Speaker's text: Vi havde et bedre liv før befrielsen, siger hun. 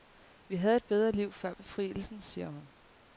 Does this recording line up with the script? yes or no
yes